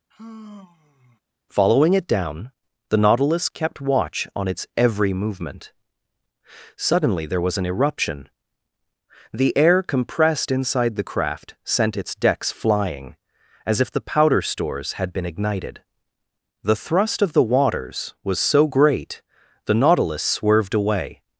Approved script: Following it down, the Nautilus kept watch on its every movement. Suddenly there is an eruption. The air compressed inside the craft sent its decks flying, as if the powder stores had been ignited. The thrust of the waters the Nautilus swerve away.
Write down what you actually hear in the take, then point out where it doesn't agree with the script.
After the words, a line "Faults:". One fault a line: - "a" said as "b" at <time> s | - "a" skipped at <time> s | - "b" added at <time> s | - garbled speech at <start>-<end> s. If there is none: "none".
Following it down, the Nautilus kept watch on its every movement. Suddenly there was an eruption. The air compressed inside the craft sent its decks flying, as if the powder stores had been ignited. The thrust of the waters was so great, the Nautilus swerved away.
Faults:
- "is" said as "was" at 7.4 s
- "was so great" added at 18.2 s
- "swerve" said as "swerved" at 20.2 s